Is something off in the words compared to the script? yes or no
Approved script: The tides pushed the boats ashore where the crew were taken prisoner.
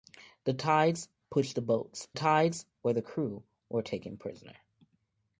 yes